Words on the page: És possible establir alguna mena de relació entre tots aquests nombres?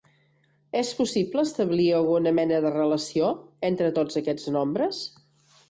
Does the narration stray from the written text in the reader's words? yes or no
no